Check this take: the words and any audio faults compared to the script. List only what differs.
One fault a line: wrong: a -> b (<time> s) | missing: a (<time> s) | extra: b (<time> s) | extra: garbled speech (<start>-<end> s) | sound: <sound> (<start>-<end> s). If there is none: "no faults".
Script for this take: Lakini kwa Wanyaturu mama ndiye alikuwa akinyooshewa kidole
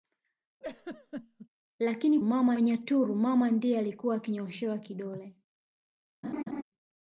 sound: laugh (0.6-1.5 s)
wrong: kwa -> mama (2.2 s)
sound: laugh (6.2-6.6 s)